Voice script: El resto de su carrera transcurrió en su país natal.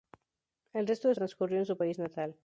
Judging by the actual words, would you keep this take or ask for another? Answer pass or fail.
fail